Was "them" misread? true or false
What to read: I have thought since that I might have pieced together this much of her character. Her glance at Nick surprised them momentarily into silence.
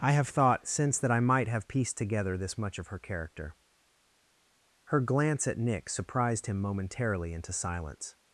true